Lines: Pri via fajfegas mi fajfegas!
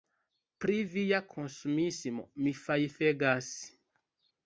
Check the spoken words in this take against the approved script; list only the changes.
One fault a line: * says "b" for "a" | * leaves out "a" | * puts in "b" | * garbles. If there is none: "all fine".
* says "konsumismo" for "fajfegas"